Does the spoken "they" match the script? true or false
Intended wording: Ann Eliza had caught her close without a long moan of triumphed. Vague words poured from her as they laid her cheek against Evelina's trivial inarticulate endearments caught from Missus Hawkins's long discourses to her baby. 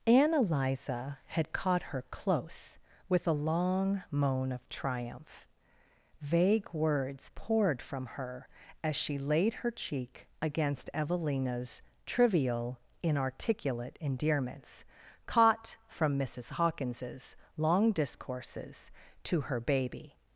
false